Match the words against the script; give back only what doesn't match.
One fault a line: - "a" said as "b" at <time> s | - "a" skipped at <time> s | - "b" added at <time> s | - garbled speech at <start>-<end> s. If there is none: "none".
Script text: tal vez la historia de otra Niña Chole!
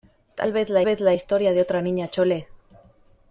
- "vez la" added at 0.8 s